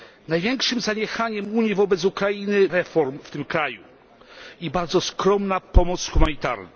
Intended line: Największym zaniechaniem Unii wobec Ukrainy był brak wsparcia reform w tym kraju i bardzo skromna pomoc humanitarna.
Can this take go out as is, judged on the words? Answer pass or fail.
fail